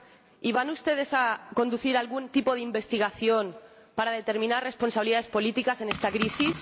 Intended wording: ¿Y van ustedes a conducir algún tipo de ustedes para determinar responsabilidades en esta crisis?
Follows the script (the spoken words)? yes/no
no